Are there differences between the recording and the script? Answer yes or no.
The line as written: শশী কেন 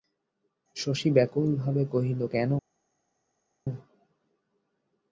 yes